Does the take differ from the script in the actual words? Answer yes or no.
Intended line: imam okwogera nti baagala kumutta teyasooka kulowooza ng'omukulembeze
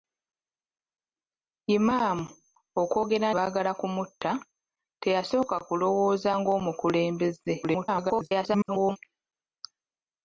yes